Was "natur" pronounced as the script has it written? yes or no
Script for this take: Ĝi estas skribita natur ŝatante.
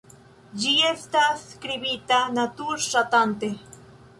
yes